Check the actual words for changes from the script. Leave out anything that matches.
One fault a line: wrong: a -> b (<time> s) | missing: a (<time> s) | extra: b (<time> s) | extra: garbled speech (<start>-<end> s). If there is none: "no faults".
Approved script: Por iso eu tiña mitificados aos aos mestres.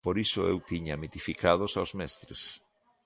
missing: aos (1.9 s)